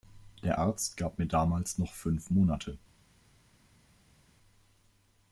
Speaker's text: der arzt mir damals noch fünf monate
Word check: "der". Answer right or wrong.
right